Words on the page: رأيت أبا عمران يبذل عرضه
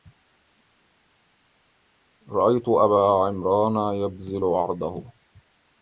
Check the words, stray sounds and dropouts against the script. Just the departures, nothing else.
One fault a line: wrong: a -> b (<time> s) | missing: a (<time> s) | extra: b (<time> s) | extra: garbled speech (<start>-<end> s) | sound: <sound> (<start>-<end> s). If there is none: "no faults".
no faults